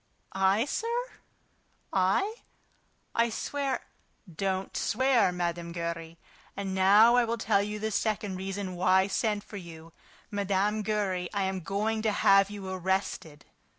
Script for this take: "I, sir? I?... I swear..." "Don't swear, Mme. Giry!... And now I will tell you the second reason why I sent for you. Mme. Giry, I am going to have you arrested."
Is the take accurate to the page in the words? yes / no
yes